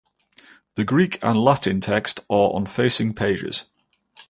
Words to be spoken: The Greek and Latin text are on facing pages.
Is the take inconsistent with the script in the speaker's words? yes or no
no